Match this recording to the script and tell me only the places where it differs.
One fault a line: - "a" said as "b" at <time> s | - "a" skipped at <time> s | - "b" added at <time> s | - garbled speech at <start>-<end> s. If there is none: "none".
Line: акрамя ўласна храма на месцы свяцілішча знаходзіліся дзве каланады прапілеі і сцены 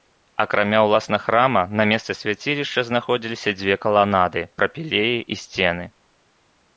none